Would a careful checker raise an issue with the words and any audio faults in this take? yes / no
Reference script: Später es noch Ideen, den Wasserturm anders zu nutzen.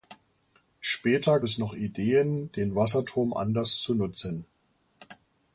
no